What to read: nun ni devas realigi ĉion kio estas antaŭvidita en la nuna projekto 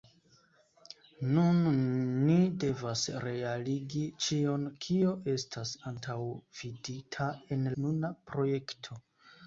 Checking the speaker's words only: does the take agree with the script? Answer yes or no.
no